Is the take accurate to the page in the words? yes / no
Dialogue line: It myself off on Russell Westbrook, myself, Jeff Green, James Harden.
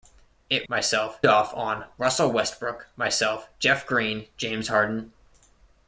yes